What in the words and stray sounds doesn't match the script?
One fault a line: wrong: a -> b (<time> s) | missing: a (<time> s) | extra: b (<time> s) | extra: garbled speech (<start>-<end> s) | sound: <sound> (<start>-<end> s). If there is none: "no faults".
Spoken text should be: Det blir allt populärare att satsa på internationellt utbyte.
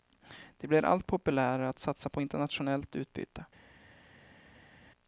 no faults